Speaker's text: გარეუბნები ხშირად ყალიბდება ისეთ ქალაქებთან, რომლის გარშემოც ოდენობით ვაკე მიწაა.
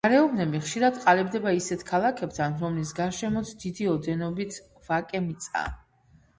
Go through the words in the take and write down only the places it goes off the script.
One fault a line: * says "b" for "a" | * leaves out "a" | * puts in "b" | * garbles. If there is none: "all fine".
* puts in "დიდი"